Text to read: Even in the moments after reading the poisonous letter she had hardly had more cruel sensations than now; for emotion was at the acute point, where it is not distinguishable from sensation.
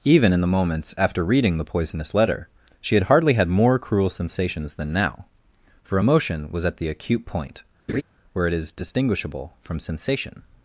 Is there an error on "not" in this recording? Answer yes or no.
yes